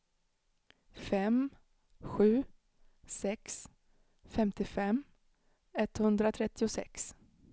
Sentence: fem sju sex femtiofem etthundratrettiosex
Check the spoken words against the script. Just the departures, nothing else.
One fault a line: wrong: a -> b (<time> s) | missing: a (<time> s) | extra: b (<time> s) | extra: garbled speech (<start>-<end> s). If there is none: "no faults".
no faults